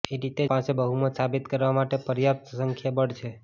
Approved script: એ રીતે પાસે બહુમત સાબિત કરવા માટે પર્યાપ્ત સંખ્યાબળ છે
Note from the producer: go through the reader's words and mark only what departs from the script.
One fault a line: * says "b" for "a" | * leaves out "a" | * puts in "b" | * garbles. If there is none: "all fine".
all fine